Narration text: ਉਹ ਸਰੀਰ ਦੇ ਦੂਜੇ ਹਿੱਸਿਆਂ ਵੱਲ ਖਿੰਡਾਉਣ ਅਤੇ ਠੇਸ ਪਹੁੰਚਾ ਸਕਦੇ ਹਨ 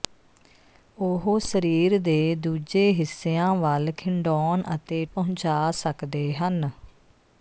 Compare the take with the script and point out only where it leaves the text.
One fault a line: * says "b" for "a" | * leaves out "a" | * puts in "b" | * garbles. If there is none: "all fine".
* leaves out "ਠੇਸ"